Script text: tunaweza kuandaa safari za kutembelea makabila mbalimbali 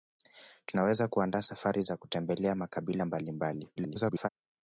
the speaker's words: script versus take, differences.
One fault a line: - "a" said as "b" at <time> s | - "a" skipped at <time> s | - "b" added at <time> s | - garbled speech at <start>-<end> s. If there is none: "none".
- garbled speech at 3.8-4.3 s